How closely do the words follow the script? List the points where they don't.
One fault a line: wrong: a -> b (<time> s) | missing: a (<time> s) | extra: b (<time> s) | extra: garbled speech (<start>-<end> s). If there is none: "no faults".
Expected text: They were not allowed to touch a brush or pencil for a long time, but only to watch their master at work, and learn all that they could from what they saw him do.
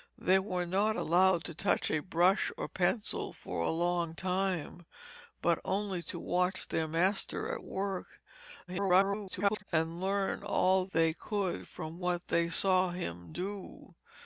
extra: garbled speech (8.7-9.6 s)
missing: that (10.9 s)